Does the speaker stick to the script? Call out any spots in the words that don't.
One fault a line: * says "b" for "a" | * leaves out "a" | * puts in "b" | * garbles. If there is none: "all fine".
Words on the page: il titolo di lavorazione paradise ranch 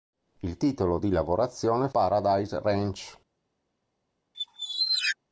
all fine